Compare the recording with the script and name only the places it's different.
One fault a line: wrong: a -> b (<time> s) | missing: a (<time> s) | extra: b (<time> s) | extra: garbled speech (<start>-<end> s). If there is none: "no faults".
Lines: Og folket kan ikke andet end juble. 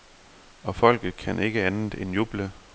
no faults